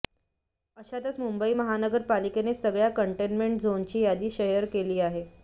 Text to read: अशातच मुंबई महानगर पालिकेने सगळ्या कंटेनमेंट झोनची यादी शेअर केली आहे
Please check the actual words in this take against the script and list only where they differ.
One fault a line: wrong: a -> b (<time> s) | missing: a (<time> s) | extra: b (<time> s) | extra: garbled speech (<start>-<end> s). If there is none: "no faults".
no faults